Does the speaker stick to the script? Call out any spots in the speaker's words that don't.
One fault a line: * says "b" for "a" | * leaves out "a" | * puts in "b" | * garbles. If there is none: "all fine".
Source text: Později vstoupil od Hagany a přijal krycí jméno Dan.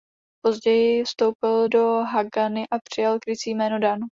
* says "do" for "od"